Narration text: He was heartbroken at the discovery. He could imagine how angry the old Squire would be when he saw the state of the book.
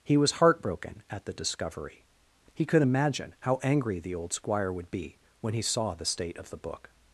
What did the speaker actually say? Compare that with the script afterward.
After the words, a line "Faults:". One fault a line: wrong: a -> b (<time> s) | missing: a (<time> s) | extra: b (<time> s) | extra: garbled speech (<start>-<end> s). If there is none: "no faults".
He was heartbroken at the discovery. He could imagine how angry the old Squire would be when he saw the state of the book.
Faults:
no faults